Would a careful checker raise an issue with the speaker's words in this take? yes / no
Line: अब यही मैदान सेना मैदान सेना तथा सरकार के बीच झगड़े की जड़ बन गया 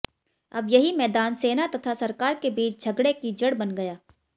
yes